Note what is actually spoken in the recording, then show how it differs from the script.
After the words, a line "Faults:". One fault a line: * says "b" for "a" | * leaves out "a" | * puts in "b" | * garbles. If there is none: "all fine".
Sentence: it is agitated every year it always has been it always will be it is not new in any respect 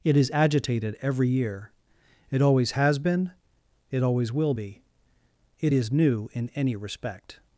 it is agitated every year it always has been it always will be it is new in any respect
Faults:
* leaves out "not"